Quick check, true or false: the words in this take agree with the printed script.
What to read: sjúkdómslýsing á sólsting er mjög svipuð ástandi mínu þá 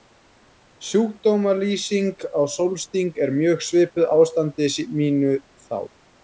true